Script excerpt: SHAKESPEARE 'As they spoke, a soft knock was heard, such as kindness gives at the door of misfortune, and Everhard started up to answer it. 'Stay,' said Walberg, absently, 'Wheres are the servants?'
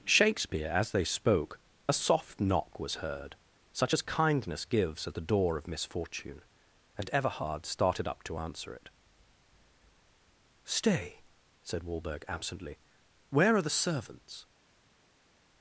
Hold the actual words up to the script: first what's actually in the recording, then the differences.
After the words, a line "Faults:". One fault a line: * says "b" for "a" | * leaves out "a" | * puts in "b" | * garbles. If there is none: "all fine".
SHAKESPEARE 'As they spoke, a soft knock was heard, such as kindness gives at the door of misfortune, and Everhard started up to answer it. 'Stay,' said Walberg, absently, 'Where are the servants?'
Faults:
* says "Where" for "Wheres"